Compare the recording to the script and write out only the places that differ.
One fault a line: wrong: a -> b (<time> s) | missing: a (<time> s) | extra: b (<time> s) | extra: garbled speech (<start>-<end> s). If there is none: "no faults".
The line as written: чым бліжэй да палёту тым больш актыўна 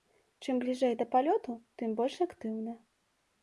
no faults